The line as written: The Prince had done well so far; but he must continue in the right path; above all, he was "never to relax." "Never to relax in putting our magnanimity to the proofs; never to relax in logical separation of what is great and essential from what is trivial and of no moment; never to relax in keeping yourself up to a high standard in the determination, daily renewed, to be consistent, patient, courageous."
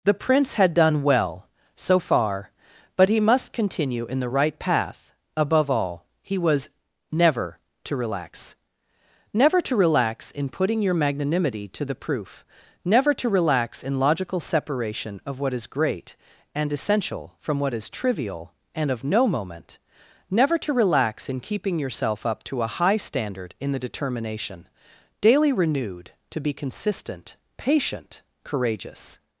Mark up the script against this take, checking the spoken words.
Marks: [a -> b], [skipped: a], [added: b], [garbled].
The Prince had done well so far; but he must continue in the right path; above all, he was "never to relax." "Never to relax in putting [our -> your] magnanimity to the [proofs; -> proof] never to relax in logical separation of what is great and essential from what is trivial and of no moment; never to relax in keeping yourself up to a high standard in the determination, daily renewed, to be consistent, patient, courageous."